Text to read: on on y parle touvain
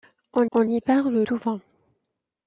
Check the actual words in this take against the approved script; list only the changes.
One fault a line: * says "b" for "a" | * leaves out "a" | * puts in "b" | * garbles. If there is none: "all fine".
all fine